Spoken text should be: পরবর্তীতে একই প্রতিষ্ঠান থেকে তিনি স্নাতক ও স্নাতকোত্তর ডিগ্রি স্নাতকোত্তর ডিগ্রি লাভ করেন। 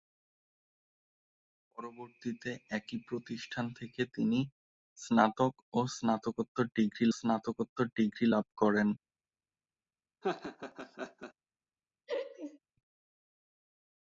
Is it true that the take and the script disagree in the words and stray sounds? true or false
true